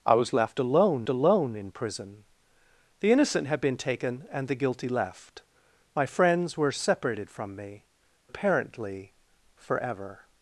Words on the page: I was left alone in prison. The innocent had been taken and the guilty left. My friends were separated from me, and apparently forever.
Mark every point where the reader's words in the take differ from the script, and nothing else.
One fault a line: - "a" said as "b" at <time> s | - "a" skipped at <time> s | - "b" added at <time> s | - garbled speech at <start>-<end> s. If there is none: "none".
- "alone" added at 1.1 s
- "and" skipped at 7.8 s